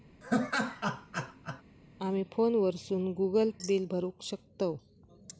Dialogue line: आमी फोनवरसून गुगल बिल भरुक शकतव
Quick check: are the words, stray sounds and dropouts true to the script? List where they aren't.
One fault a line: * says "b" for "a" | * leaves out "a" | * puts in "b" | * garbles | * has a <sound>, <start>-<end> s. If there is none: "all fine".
* has a laugh, 0.2-1.6 s